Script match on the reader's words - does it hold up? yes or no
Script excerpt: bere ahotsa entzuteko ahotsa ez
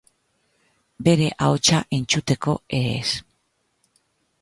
no